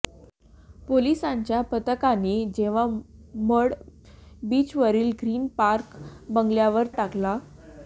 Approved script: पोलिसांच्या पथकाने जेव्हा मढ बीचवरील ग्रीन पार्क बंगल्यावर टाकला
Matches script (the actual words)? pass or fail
pass